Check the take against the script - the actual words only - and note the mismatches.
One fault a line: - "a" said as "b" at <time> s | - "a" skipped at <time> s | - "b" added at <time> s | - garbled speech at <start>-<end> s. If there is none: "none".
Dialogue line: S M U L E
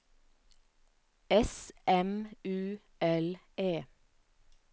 none